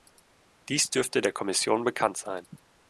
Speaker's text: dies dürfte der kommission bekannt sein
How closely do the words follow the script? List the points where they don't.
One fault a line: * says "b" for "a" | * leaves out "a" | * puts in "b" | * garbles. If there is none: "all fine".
all fine